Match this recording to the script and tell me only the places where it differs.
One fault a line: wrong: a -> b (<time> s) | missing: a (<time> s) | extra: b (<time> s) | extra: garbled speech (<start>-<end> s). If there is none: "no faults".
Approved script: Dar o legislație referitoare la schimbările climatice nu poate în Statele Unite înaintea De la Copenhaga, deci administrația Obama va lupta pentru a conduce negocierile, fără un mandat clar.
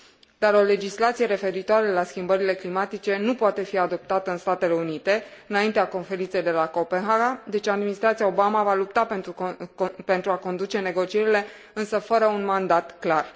extra: fi adoptată (3.6 s)
extra: Conferinței (5.9 s)
extra: însă (11.7 s)